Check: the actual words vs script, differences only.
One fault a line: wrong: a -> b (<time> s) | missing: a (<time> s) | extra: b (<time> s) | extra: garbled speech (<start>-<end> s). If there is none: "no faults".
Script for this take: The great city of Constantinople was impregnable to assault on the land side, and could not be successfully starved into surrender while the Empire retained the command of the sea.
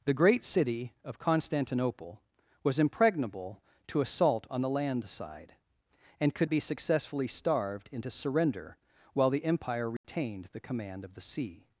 missing: not (6.5 s)